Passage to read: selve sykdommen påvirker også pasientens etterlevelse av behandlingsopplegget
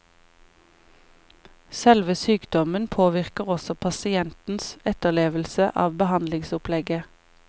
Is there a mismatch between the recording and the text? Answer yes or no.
no